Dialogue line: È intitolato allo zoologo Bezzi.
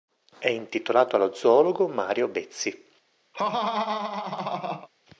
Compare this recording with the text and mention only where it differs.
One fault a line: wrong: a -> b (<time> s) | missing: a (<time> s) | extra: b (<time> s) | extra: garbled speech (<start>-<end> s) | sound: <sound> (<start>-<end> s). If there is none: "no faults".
extra: Mario (1.9 s)
sound: laugh (3.3-4.9 s)